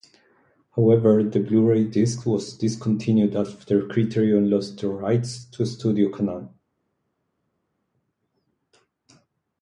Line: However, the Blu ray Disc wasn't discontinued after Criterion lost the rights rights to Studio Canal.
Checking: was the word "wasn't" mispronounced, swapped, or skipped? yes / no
yes